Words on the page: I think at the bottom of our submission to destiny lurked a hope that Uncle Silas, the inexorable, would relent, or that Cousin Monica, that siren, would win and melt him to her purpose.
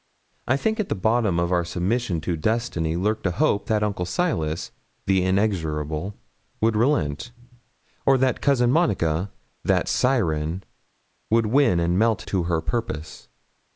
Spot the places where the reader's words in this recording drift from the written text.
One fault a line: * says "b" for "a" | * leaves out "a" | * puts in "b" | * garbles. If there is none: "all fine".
* leaves out "him"